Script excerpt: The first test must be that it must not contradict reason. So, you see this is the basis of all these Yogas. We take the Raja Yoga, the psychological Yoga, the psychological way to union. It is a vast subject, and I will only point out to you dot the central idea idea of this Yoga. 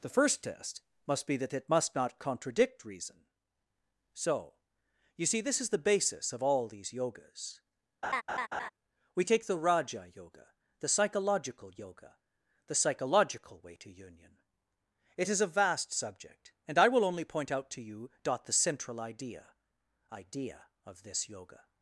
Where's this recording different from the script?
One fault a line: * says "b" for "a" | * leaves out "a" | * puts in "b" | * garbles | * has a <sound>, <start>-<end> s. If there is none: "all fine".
* has a laugh, 8.0-8.7 s